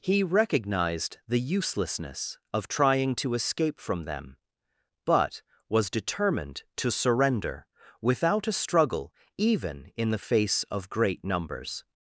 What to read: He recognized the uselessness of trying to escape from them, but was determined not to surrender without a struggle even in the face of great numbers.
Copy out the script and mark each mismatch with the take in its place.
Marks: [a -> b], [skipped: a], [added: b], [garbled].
He recognized the uselessness of trying to escape from them, but was determined [skipped: not] to surrender without a struggle even in the face of great numbers.